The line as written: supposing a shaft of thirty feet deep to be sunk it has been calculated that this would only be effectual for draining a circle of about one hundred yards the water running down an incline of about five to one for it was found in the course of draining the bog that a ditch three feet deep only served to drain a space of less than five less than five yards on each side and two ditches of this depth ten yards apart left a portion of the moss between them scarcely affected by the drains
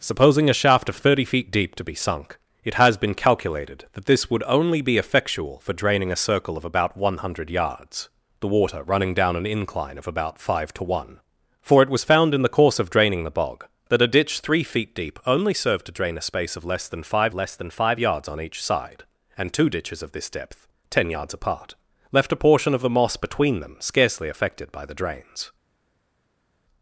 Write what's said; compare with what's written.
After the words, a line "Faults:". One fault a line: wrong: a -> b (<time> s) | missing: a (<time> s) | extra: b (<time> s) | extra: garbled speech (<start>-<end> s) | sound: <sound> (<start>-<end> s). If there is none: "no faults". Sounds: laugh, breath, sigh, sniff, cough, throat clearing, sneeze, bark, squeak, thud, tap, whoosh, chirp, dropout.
supposing a shaft of thirty feet deep to be sunk it has been calculated that this would only be effectual for draining a circle of about one hundred yards the water running down an incline of about five to one for it was found in the course of draining the bog that a ditch three feet deep only served to drain a space of less than five less than five yards on each side and two ditches of this depth ten yards apart left a portion of the moss between them scarcely affected by the drains
Faults:
no faults